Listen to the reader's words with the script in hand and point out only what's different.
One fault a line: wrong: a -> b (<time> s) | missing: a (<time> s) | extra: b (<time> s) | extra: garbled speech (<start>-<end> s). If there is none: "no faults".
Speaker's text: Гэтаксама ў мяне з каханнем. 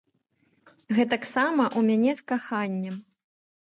no faults